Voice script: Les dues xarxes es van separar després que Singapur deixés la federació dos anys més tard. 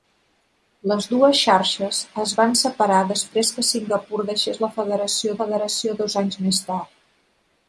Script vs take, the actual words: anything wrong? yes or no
yes